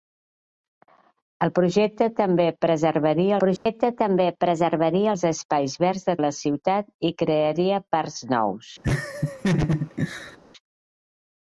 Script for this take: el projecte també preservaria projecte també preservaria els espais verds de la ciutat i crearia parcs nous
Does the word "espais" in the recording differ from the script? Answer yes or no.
no